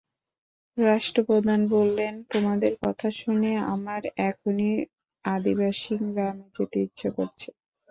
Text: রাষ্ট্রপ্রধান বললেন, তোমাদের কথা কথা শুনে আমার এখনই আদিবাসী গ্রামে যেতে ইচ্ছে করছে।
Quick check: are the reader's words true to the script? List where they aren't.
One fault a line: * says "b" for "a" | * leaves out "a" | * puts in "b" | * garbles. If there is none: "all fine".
* leaves out "কথা"